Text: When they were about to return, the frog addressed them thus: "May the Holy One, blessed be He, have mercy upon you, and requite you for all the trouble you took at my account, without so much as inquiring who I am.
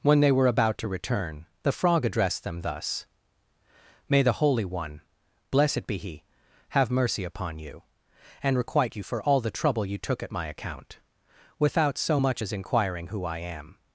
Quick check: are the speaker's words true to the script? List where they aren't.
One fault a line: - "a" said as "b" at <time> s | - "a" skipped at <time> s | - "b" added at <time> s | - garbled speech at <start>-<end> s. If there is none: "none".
none